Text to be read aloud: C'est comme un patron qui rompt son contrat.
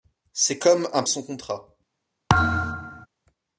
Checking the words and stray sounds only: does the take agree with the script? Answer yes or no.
no